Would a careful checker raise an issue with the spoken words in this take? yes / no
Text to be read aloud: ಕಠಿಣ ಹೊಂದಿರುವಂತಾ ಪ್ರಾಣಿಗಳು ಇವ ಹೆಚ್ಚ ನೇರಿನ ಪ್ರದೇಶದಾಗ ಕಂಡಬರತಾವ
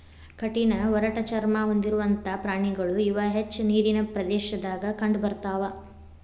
yes